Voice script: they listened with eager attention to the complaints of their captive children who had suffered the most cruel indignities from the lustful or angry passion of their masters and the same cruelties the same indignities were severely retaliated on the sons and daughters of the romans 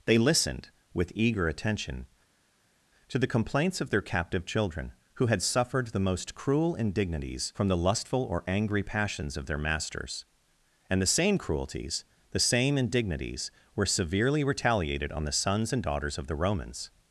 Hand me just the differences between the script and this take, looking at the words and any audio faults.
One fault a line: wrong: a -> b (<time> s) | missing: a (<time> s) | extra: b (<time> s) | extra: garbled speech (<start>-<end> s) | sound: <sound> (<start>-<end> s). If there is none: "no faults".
wrong: passion -> passions (8.8 s)